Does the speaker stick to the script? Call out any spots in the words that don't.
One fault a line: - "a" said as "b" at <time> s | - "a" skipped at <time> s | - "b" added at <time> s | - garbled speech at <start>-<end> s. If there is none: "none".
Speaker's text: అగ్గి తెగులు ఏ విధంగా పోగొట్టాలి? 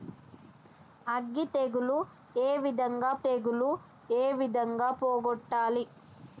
- "తెగులు ఏ విధంగా" added at 3.2 s